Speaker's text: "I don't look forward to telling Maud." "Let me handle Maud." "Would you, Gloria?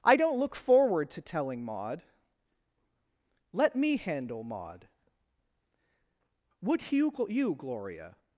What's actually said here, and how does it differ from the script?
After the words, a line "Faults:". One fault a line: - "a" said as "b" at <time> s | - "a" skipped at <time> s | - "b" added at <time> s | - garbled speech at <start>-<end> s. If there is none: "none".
"I don't look forward to telling Maud." "Let me handle Maud." "Would you you, Gloria?
Faults:
- "you" added at 7.3 s